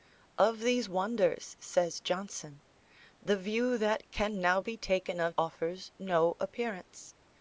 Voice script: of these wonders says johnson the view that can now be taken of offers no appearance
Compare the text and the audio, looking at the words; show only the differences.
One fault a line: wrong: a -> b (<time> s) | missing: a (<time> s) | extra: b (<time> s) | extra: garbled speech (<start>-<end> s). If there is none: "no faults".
no faults